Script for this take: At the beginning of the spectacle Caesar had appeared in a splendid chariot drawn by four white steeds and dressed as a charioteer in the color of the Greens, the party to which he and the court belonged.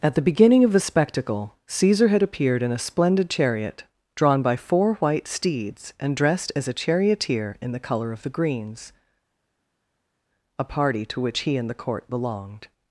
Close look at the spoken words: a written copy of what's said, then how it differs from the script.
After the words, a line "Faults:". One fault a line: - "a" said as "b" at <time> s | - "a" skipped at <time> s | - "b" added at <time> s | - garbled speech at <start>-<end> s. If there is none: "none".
At the beginning of the spectacle Caesar had appeared in a splendid chariot drawn by four white steeds and dressed as a charioteer in the color of the Greens, a party to which he and the court belonged.
Faults:
- "the" said as "a" at 10.6 s